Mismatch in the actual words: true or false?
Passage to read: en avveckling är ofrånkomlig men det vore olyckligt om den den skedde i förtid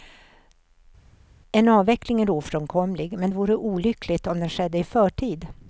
true